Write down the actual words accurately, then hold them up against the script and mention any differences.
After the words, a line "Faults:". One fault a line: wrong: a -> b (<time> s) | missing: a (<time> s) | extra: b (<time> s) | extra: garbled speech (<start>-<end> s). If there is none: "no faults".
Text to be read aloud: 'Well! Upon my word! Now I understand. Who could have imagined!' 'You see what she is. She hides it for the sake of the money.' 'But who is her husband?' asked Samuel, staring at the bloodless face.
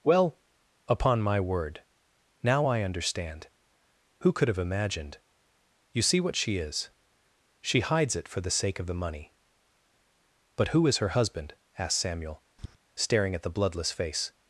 'Well! Upon my word! Now I understand. Who could have imagined!' 'You see what she is. She hides it for the sake of the money.' 'But who is her husband?' asked Samuel, staring at the bloodless face.
Faults:
no faults